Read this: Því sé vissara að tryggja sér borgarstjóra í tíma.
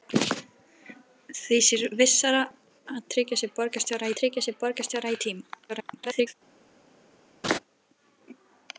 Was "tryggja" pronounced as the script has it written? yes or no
yes